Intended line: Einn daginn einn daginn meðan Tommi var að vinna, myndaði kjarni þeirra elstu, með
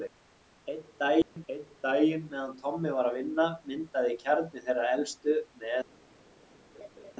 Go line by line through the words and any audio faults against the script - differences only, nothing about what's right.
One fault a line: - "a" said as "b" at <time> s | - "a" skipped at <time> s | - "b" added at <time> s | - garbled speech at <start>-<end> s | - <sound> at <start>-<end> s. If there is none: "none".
- dropout at 1.2-1.4 s
- laugh at 6.7-7.1 s